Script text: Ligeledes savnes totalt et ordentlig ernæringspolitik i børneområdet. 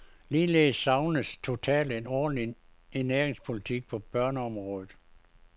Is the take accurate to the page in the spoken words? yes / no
no